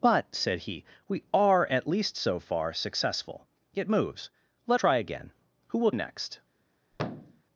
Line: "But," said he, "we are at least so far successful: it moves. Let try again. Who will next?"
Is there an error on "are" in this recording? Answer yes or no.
no